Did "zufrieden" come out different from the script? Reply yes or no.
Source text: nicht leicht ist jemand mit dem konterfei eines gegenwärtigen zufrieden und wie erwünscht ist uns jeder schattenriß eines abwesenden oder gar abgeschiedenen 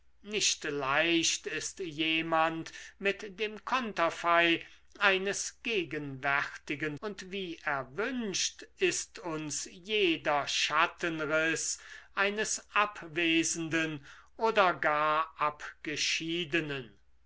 yes